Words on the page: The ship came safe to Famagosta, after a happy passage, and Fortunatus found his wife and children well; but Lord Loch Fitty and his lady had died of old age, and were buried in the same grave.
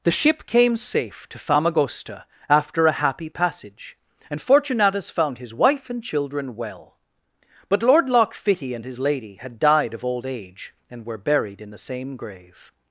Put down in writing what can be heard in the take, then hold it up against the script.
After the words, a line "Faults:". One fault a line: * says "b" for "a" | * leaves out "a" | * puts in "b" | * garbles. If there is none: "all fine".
The ship came safe to Famagosta, after a happy passage, and Fortunatus found his wife and children well; but Lord Loch Fitty and his lady had died of old age, and were buried in the same grave.
Faults:
all fine